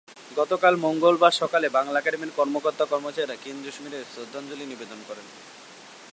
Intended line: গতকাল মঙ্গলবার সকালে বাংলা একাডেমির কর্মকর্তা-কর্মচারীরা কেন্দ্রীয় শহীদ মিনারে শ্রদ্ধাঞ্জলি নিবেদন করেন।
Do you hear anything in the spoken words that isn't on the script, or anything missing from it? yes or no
yes